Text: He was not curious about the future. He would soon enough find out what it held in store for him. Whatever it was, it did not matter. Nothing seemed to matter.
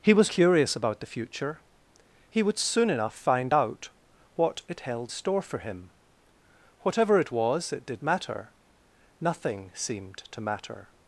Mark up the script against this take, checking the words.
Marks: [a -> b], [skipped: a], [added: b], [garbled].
He was [skipped: not] curious about the future. He would soon enough find out what it held [skipped: in] store for him. Whatever it was, it did [skipped: not] matter. Nothing seemed to matter.